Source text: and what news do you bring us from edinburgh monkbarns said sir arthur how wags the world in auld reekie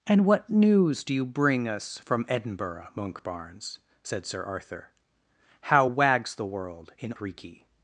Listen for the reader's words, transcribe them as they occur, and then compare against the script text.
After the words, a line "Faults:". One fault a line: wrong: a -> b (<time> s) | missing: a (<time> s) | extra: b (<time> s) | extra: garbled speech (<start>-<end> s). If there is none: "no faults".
and what news do you bring us from edinburgh monkbarns said sir arthur how wags the world in reekie
Faults:
missing: auld (7.1 s)